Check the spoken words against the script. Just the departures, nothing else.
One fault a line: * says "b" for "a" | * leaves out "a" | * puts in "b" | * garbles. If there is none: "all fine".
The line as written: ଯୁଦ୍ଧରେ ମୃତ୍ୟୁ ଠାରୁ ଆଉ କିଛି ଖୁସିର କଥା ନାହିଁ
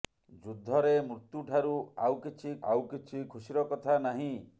* puts in "ଆଉ କିଛି"